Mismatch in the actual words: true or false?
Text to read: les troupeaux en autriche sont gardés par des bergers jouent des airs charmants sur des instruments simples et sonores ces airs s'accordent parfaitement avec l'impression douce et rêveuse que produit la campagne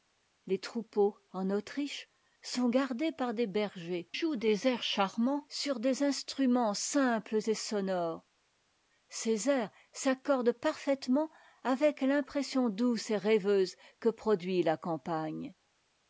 false